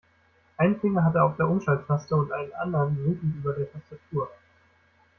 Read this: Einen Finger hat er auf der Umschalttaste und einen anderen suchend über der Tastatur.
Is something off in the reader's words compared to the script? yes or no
no